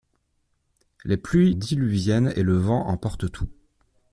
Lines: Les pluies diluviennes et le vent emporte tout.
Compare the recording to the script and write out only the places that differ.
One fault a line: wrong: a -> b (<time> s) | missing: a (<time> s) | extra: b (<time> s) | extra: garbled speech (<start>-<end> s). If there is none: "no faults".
no faults